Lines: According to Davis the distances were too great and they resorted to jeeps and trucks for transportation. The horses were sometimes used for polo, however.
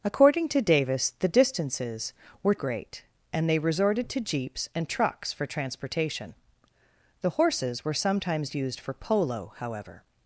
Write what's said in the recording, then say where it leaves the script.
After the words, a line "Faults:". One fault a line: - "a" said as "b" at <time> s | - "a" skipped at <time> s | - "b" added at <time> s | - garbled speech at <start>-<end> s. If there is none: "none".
According to Davis the distances were great and they resorted to jeeps and trucks for transportation. The horses were sometimes used for polo, however.
Faults:
- "too" skipped at 2.5 s